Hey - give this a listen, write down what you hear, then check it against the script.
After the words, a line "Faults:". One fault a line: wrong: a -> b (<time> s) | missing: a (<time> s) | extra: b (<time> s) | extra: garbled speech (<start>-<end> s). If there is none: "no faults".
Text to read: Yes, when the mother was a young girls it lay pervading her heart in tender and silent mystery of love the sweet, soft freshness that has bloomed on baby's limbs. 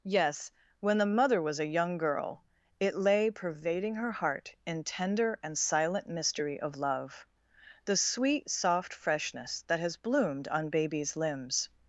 Yes, when the mother was a young girl it lay pervading her heart in tender and silent mystery of love the sweet, soft freshness that has bloomed on baby's limbs.
Faults:
wrong: girls -> girl (2.0 s)